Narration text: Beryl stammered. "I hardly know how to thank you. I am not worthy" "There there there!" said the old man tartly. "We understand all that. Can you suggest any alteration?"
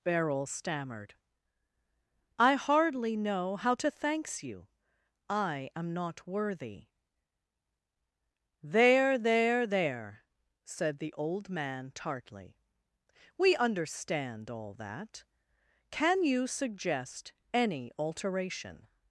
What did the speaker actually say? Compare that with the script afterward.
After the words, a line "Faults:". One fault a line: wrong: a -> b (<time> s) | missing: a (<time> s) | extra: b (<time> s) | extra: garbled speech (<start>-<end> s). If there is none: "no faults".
Beryl stammered. "I hardly know how to thanks you. I am not worthy" "There there there!" said the old man tartly. "We understand all that. Can you suggest any alteration?"
Faults:
wrong: thank -> thanks (3.9 s)